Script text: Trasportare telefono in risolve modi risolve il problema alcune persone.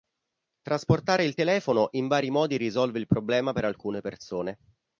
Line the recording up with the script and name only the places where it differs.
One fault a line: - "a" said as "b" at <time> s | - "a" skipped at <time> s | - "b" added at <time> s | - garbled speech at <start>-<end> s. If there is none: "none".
- "il" added at 1.2 s
- "risolve" said as "vari" at 2.1 s
- "per" added at 3.5 s